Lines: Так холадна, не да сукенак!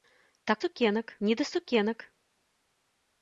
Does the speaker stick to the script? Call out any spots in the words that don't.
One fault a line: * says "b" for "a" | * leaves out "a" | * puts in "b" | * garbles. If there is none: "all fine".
* says "сукенак" for "холадна"